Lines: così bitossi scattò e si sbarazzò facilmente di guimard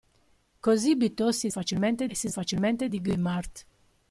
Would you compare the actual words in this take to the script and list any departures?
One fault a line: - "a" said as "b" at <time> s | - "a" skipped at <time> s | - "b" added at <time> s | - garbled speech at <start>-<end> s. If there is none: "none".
- "scattò" said as "facilmente" at 1.5 s
- "sbarazzò" skipped at 2.3 s